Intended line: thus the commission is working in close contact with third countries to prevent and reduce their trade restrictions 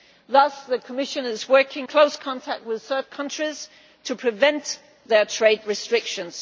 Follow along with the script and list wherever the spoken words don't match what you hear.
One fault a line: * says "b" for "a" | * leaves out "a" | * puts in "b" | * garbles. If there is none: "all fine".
* leaves out "in"
* leaves out "and reduce"